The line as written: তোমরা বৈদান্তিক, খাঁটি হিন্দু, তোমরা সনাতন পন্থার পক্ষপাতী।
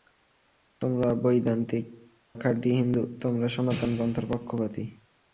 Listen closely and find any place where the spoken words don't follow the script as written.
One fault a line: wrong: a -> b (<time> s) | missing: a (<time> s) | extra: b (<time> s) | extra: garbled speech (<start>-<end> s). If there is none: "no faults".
no faults